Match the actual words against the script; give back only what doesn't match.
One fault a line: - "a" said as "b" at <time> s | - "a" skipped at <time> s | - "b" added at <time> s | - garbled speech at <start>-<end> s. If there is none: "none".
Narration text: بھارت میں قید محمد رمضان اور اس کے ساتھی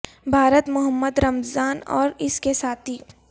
- "میں قید" skipped at 0.7 s